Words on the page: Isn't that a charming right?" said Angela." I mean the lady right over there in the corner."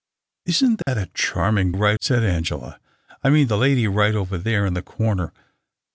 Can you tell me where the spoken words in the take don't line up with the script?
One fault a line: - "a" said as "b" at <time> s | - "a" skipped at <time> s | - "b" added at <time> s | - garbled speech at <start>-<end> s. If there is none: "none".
none